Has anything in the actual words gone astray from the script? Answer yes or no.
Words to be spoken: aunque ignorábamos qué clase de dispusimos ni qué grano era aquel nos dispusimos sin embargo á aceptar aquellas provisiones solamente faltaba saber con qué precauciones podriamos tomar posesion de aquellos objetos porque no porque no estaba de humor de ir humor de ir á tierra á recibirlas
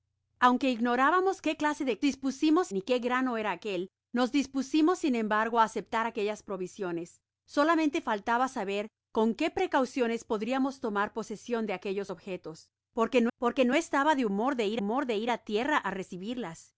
no